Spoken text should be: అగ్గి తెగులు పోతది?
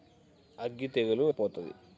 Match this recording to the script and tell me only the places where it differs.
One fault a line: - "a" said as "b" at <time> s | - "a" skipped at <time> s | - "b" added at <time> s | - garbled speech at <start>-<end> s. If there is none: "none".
none